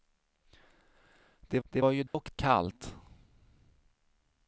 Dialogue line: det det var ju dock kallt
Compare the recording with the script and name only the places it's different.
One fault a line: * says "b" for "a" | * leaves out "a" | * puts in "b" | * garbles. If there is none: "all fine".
all fine